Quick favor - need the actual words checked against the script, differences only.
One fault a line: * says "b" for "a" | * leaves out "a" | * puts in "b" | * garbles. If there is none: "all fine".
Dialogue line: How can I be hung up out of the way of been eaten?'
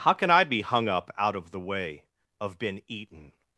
all fine